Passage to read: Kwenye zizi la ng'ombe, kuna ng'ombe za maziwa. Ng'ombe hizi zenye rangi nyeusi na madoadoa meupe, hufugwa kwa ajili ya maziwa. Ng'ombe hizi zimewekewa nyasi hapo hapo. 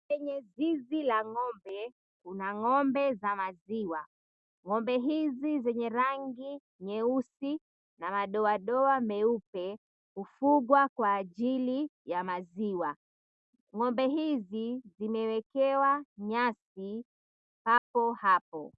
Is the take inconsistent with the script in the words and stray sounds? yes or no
yes